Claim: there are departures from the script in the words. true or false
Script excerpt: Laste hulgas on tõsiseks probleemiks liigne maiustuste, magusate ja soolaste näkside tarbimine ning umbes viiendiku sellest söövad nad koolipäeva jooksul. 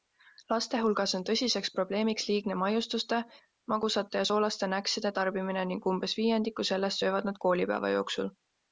false